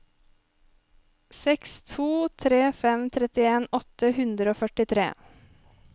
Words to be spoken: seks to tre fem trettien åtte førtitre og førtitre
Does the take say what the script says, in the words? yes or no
no